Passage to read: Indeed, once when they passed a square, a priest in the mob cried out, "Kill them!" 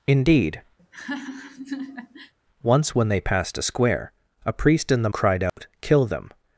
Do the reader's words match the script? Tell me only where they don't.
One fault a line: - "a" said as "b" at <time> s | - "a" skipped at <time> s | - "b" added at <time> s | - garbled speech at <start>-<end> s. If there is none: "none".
- "mob" skipped at 5.1 s